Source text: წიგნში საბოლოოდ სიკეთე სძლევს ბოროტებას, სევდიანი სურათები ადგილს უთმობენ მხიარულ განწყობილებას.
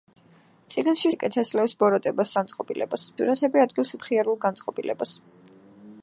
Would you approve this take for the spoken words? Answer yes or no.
no